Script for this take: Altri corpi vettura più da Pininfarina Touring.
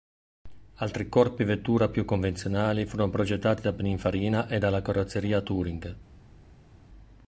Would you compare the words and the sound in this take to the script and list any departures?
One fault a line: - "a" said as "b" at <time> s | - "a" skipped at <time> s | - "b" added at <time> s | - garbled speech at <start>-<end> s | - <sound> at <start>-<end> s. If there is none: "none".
- "convenzionali furono progettati" added at 2.0 s
- "e dalla Carrozzeria" added at 4.5 s